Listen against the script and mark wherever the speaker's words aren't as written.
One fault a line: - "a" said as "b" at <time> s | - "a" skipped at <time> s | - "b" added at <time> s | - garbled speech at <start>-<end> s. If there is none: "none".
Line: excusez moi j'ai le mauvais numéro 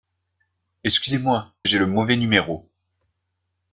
none